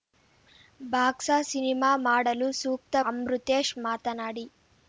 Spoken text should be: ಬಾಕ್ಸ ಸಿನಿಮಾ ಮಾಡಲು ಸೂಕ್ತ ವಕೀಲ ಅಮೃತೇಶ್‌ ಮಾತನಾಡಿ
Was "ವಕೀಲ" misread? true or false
true